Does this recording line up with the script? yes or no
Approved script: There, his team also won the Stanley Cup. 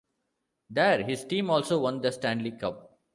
yes